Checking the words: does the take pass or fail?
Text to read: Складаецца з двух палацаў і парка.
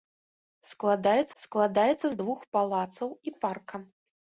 fail